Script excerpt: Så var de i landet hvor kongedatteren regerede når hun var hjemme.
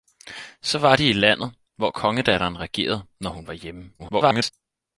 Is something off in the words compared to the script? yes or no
yes